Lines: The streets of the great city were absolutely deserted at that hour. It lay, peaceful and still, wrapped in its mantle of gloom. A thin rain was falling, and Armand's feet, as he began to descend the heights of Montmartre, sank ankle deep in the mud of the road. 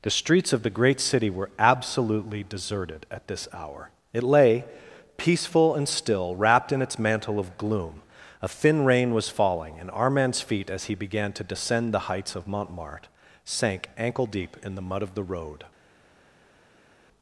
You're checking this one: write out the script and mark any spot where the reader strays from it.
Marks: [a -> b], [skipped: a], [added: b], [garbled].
The streets of the great city were absolutely deserted at [that -> this] hour. It lay, peaceful and still, wrapped in its mantle of gloom. A thin rain was falling, and Armand's feet, as he began to descend the heights of Montmartre, sank ankle deep in the mud of the road.